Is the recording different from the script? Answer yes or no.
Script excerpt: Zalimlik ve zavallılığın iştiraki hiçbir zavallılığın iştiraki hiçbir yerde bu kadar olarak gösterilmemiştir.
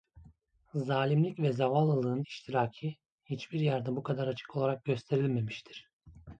yes